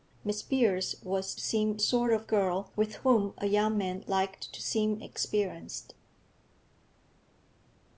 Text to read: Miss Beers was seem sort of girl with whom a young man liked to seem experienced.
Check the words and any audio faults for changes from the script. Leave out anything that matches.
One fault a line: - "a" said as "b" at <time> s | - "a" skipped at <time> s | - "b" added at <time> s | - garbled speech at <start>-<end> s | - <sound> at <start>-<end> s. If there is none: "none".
none